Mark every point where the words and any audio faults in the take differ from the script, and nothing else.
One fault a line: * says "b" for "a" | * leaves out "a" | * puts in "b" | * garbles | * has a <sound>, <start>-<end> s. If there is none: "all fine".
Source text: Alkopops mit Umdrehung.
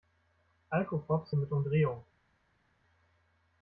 all fine